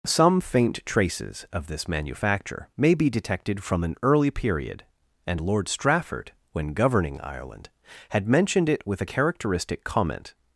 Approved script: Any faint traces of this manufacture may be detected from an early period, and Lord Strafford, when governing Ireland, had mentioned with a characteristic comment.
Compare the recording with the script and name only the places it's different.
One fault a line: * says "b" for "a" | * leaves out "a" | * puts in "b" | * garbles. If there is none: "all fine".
* says "Some" for "Any"
* puts in "it"